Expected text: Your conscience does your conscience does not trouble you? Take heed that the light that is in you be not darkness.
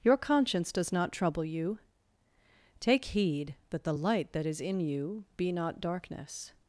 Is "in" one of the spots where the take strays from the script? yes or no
no